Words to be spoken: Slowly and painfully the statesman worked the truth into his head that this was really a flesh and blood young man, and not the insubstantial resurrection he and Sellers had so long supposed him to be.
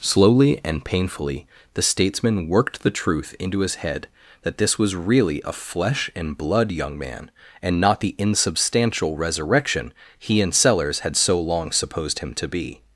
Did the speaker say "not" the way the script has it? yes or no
yes